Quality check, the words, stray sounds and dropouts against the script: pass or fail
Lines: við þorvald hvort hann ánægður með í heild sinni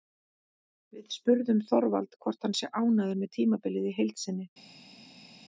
fail